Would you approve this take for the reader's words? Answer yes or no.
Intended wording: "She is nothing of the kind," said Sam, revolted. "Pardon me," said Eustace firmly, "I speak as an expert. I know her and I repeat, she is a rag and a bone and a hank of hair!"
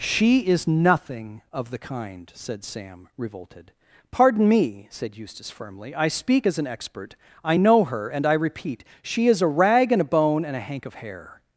yes